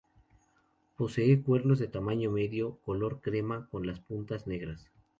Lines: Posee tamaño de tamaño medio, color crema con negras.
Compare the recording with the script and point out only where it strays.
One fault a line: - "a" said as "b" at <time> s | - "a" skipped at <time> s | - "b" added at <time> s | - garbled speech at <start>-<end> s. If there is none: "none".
- "tamaño" said as "cuernos" at 1.4 s
- "las puntas" added at 3.9 s